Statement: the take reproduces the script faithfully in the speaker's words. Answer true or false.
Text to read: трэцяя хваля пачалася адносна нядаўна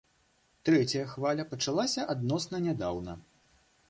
true